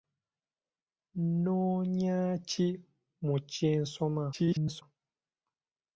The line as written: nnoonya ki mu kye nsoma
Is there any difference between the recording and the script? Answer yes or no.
yes